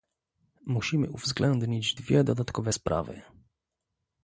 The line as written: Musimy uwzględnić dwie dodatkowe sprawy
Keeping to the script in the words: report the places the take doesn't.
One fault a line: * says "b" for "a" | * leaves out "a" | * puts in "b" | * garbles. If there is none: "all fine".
all fine